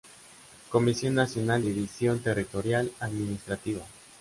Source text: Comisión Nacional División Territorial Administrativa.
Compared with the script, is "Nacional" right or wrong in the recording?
right